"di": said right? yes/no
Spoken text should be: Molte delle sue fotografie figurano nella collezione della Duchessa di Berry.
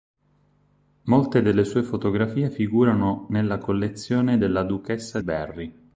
no